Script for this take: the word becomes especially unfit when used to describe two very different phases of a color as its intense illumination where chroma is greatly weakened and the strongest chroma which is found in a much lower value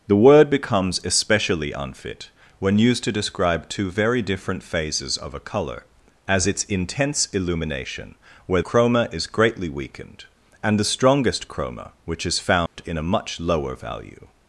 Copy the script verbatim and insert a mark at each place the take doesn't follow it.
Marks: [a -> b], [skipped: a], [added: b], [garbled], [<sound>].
the word becomes especially unfit when used to describe two very different phases of a color as its intense illumination where chroma is greatly weakened and the strongest chroma which is found [dropout] in a much lower value